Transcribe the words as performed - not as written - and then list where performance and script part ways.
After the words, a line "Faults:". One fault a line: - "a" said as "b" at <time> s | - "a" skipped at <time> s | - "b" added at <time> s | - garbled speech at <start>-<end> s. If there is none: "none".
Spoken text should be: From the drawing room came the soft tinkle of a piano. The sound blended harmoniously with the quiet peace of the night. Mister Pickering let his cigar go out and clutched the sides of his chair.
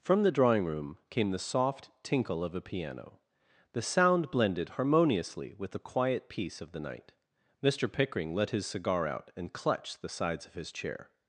From the drawing room came the soft tinkle of a piano. The sound blended harmoniously with the quiet peace of the night. Mister Pickering let his cigar out and clutched the sides of his chair.
Faults:
- "go" skipped at 9.1 s